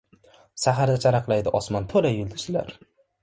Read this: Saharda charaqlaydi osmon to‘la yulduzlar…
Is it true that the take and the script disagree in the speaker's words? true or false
false